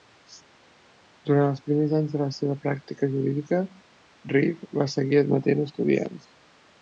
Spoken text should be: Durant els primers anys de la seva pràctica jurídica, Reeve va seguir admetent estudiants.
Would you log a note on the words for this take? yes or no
no